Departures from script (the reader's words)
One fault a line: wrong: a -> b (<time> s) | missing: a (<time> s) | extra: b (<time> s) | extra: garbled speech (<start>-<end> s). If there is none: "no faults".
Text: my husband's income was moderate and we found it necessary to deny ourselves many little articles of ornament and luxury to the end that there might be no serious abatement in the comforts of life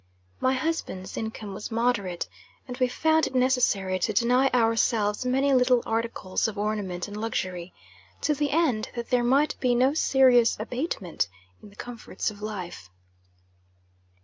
no faults